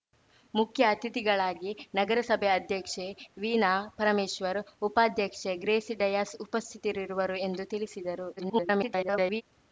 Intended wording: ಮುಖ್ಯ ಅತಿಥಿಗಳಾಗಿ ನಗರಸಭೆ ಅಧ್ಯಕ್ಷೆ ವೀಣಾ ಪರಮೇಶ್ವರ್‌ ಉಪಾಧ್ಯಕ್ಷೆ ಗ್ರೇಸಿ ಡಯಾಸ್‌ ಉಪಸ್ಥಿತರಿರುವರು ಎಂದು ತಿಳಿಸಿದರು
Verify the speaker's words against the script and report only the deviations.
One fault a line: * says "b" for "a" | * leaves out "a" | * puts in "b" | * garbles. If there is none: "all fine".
* garbles